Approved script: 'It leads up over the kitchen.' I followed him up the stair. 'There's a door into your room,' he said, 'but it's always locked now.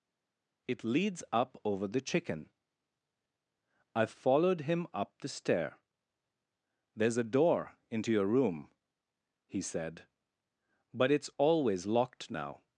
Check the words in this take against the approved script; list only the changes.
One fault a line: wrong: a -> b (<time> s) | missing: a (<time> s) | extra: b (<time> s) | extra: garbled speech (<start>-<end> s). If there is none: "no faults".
wrong: kitchen -> chicken (2.0 s)